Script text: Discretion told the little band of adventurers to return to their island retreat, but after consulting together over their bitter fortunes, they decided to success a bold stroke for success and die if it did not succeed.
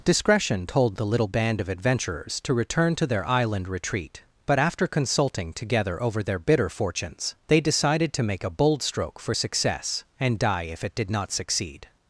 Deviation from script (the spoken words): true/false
true